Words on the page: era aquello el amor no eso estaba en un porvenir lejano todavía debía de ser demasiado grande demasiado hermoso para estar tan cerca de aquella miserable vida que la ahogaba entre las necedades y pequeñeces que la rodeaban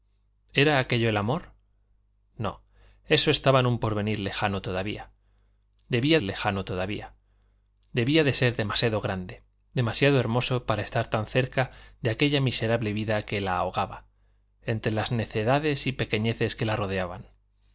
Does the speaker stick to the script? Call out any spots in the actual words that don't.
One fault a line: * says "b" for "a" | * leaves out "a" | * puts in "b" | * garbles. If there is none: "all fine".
* puts in "lejano todavía debía"